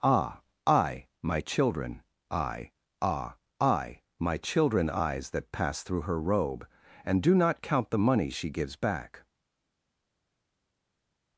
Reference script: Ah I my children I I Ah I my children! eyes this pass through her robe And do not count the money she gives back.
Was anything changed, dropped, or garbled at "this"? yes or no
yes